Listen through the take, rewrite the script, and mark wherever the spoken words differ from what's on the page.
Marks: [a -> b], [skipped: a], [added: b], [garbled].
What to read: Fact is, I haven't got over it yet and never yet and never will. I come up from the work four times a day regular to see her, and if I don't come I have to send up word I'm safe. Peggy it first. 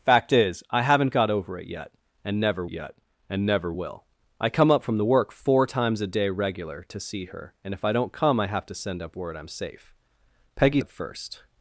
Fact is, I haven't got over it yet and never yet and never will. I come up from the work four times a day regular to see her, and if I don't come I have to send up word I'm safe. Peggy it first.